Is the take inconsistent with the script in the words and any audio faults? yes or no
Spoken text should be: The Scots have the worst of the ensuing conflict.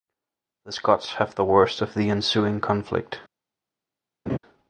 yes